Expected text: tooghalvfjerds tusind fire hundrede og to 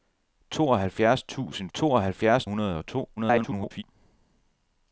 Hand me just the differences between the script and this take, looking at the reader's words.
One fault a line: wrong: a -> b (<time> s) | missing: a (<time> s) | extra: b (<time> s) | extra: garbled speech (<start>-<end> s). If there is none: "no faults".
wrong: fire -> tooghalvfjerds (1.7 s)
extra: garbled speech (3.2-3.8 s)